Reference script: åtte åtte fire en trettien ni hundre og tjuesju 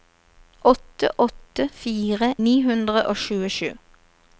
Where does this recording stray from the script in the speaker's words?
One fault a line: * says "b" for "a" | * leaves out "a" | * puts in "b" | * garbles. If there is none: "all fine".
* leaves out "en trettien"